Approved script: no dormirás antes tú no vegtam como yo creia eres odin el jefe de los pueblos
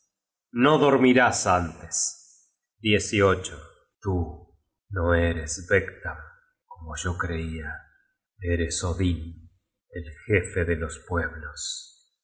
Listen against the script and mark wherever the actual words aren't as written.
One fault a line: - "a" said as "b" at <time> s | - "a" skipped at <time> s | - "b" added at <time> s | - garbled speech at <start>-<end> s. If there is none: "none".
- "eres" added at 5.1 s